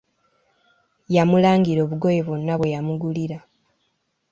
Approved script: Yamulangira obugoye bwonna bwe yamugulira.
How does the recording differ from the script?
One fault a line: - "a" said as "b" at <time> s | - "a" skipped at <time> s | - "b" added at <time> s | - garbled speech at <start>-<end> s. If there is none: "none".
none